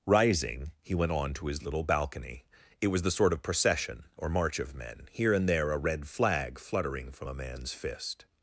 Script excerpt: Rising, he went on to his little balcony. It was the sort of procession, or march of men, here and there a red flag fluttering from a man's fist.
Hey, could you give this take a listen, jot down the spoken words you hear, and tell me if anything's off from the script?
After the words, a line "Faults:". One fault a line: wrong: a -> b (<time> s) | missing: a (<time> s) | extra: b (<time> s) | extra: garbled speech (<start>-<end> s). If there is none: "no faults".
Rising, he went on to his little balcony. It was the sort of procession, or march of men, here and there a red flag fluttering from a man's fist.
Faults:
no faults